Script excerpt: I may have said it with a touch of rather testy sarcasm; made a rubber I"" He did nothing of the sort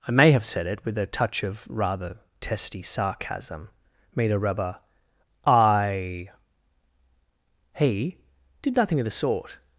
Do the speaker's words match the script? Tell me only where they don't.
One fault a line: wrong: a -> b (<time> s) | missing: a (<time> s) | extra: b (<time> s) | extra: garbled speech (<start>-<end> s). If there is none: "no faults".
no faults